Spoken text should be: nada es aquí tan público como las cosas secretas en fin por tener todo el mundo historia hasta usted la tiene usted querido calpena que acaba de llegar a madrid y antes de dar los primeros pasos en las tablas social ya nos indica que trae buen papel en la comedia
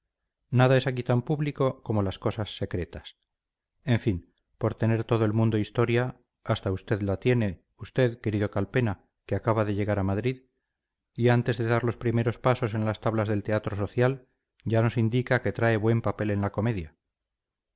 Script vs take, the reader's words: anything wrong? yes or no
yes